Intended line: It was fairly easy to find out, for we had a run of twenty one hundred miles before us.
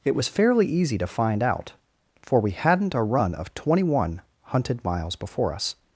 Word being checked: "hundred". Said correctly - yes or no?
no